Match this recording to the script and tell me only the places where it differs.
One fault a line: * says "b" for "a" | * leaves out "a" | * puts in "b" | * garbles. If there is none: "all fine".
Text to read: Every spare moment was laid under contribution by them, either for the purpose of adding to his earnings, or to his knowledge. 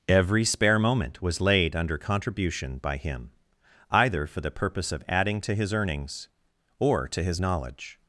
* says "him" for "them"